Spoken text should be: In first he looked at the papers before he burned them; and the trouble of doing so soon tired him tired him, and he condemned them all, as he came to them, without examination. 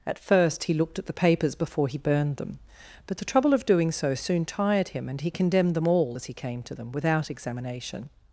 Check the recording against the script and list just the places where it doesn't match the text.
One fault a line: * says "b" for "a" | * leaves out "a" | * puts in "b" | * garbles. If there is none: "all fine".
* says "At" for "In"
* says "but" for "and"
* leaves out "tired him"